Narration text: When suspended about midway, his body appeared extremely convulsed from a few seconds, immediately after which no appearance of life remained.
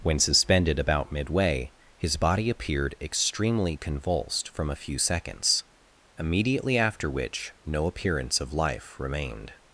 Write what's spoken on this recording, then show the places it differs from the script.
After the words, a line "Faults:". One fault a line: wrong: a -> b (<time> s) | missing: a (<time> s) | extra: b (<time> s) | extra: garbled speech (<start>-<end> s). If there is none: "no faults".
When suspended about midway, his body appeared extremely convulsed from a few seconds, immediately after which no appearance of life remained.
Faults:
no faults